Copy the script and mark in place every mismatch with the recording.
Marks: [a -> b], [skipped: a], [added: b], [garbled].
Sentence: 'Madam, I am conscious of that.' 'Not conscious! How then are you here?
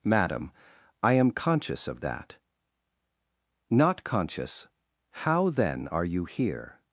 'Madam, I am conscious of that.' 'Not conscious! How then are you here?